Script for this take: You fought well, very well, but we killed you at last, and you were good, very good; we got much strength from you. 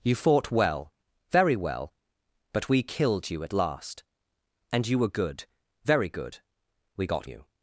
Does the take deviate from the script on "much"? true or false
true